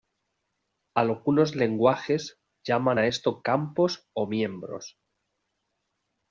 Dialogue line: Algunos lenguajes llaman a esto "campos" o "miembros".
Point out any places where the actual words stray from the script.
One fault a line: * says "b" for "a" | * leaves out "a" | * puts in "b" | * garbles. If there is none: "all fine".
all fine